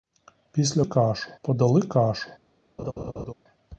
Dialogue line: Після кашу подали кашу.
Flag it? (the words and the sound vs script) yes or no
yes